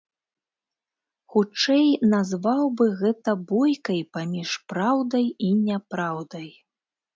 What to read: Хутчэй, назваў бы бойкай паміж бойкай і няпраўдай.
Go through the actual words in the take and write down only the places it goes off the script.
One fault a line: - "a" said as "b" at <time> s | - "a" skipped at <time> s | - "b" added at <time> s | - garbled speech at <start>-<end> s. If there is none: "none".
- "гэта" added at 3.0 s
- "бойкай" said as "праўдай" at 4.7 s